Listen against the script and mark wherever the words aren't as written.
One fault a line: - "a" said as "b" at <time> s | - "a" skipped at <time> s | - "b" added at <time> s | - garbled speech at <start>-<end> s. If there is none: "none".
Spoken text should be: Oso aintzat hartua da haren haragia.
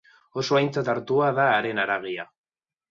none